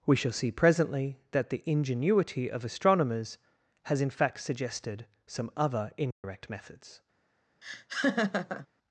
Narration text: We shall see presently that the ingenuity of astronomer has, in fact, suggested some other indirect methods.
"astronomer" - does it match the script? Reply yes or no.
no